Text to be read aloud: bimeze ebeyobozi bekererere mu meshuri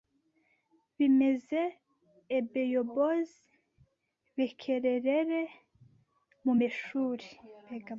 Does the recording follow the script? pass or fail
pass